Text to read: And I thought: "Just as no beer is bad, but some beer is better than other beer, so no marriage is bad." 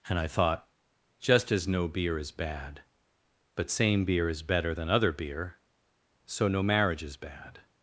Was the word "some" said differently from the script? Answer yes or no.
yes